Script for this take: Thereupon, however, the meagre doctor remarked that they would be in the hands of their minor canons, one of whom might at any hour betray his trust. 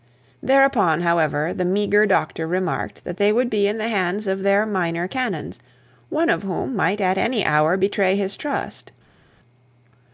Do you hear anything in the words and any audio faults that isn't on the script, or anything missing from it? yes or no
no